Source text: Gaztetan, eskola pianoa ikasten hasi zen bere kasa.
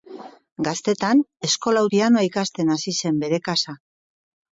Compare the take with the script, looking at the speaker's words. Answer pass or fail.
pass